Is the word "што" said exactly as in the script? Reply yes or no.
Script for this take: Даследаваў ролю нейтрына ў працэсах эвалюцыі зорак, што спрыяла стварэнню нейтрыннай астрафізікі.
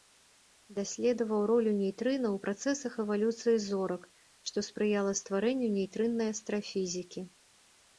yes